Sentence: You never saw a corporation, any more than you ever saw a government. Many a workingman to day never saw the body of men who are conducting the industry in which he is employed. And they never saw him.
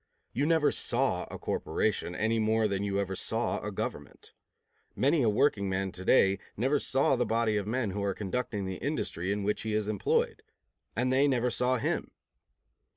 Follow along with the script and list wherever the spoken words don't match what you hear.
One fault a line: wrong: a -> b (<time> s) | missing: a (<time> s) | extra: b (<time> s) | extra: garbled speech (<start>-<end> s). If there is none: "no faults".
no faults